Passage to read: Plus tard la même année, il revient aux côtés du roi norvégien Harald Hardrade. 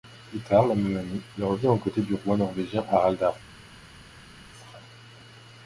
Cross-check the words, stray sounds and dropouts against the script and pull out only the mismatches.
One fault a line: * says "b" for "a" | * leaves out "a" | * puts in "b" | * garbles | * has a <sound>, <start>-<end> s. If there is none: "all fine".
all fine